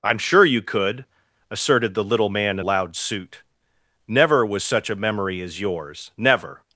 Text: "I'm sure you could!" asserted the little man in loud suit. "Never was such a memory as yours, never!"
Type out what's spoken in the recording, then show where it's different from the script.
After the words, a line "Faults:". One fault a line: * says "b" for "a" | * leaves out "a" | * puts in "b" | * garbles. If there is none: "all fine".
"I'm sure you could!" asserted the little man in loud suit. "Never was such a memory as yours, never!"
Faults:
all fine